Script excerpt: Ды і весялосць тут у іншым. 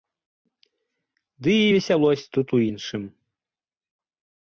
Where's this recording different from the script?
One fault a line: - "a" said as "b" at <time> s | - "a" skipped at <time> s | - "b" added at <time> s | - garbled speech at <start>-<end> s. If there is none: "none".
none